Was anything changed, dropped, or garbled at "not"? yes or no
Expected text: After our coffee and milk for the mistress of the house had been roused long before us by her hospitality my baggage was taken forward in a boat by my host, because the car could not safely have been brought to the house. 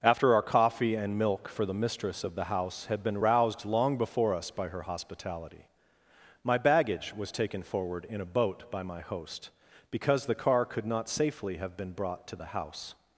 no